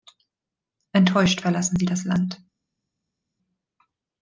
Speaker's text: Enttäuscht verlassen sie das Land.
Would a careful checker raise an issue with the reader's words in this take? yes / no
no